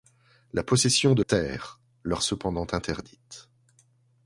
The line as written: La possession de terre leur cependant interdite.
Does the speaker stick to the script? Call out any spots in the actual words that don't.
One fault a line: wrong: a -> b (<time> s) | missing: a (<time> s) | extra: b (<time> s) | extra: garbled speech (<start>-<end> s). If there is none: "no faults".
no faults